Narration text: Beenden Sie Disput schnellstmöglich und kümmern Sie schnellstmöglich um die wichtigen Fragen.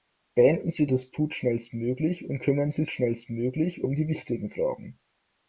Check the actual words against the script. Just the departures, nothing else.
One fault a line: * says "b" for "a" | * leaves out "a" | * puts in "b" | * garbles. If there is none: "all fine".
all fine